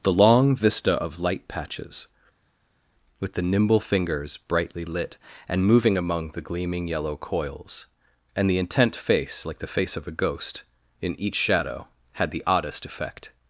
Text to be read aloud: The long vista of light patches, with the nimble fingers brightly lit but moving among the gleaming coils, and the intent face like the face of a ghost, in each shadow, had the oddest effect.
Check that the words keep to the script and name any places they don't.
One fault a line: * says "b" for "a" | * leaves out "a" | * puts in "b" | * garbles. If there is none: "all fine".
* says "and" for "but"
* puts in "yellow"